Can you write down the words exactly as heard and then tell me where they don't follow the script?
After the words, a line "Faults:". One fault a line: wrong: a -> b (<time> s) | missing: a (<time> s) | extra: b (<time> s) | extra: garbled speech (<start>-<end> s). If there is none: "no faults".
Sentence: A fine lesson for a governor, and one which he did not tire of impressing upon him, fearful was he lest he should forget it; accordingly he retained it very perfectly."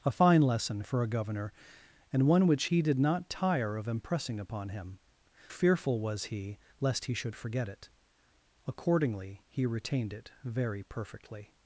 A fine lesson for a governor, and one which he did not tire of impressing upon him, fearful was he lest he should forget it; accordingly he retained it very perfectly."
Faults:
no faults